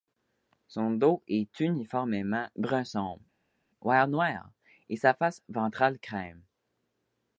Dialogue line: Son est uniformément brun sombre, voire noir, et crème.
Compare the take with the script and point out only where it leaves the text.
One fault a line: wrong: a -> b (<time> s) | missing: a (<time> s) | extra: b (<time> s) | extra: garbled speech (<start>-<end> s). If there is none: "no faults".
extra: dos (0.9 s)
extra: sa face ventrale (5.0 s)